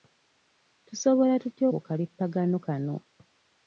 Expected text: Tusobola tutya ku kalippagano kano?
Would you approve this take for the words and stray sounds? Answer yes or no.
yes